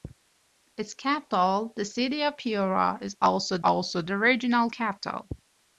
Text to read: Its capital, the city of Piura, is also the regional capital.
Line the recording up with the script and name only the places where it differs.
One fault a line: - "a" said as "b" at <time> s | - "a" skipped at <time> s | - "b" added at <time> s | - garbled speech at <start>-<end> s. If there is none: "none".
- "also" added at 3.6 s